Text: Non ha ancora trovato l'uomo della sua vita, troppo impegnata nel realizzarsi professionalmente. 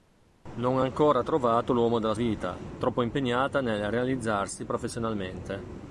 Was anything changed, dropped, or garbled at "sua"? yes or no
yes